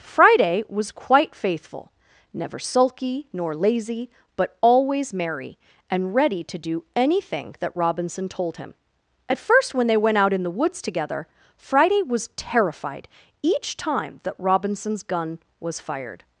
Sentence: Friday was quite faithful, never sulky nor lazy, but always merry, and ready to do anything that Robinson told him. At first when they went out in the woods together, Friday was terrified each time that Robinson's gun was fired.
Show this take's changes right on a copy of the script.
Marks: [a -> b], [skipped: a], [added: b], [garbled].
Friday was quite faithful, never sulky nor lazy, but always merry, and ready to do anything that Robinson told him. At first when they went out in the woods together, Friday was terrified each time that Robinson's gun was fired.